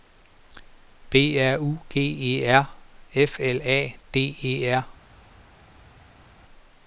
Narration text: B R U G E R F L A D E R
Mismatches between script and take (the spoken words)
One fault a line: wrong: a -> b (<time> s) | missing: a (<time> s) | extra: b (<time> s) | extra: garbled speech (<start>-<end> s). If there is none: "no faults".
no faults